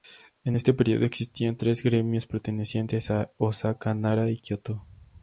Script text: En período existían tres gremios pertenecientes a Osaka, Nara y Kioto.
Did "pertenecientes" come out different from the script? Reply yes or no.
no